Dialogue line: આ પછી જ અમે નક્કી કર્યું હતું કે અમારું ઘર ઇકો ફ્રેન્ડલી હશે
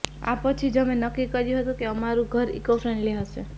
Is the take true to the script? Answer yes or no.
yes